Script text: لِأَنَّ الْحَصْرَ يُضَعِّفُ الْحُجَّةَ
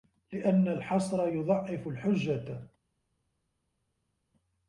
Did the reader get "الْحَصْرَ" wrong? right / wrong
right